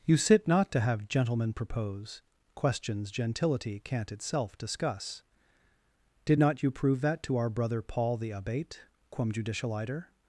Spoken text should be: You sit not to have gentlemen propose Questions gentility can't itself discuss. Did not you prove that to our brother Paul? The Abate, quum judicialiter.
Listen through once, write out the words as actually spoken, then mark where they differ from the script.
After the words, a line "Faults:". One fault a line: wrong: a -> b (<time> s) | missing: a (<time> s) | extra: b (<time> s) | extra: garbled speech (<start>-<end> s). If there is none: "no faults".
You sit not to have gentlemen propose Questions gentility can't itself discuss. Did not you prove that to our brother Paul? The Abate, quum judicialiter.
Faults:
no faults